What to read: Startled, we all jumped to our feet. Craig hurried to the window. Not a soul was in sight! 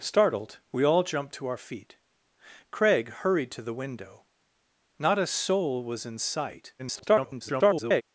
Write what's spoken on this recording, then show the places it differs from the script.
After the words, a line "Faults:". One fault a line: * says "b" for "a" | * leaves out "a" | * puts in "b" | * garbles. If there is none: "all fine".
Startled, we all jumped to our feet. Craig hurried to the window. Not a soul was in sight! [garbled]
Faults:
* garbles